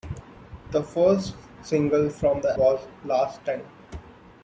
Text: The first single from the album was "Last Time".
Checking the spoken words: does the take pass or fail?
fail